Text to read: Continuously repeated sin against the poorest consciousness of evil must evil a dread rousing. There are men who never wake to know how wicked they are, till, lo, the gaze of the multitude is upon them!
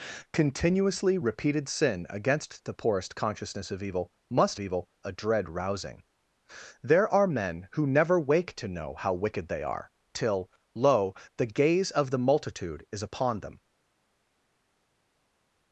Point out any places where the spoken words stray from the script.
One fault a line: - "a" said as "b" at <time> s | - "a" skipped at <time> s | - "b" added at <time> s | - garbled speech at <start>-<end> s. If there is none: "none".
none